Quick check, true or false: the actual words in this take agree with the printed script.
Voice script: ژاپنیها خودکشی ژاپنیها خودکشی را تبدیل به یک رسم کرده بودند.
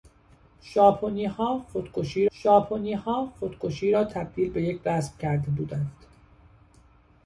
true